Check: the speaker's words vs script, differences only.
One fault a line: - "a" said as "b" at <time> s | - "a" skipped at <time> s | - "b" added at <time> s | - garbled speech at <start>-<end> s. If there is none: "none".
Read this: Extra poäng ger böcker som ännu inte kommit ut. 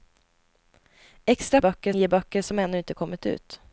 - "poäng" said as "böcker" at 1.6 s